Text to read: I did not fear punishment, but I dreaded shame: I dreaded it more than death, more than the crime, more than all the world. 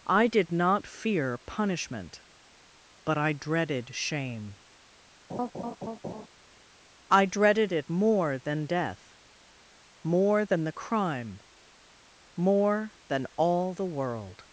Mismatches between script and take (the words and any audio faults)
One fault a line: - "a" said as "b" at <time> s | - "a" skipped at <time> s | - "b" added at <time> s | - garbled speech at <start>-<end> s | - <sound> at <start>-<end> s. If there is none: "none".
- laugh at 5.3-6.3 s